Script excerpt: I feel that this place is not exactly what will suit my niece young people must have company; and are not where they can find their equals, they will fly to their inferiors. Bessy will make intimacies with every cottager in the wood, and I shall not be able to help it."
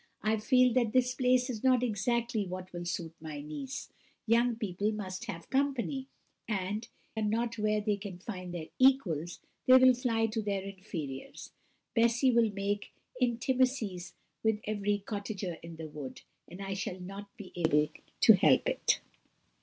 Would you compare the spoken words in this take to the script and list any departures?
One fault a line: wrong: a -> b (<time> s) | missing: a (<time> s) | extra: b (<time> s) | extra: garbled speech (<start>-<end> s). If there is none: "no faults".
no faults